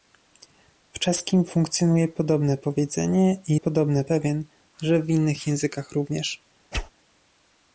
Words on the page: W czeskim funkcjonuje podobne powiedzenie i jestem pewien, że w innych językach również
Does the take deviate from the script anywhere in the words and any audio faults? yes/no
yes